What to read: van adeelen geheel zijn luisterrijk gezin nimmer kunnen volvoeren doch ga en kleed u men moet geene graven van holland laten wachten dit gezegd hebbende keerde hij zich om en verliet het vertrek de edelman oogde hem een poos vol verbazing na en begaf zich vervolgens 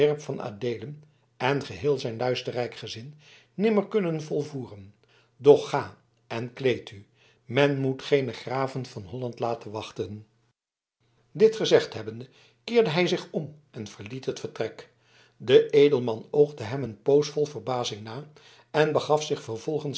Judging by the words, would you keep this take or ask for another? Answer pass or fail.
fail